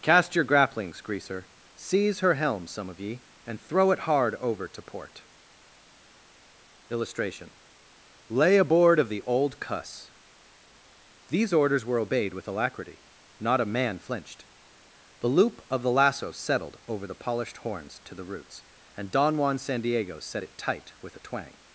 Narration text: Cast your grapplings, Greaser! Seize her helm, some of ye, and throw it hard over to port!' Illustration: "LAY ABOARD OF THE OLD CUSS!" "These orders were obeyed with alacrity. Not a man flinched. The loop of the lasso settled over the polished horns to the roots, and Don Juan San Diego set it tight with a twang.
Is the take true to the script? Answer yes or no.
yes